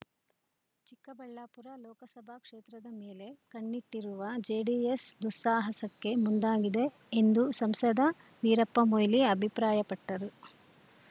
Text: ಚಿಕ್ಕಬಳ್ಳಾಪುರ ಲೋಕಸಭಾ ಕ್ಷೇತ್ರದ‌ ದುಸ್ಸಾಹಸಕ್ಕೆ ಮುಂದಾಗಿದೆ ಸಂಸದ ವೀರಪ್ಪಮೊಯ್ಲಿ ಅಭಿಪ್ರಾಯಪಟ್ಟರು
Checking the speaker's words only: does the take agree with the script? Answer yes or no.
no